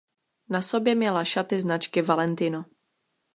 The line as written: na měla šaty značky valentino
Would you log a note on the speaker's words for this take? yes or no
yes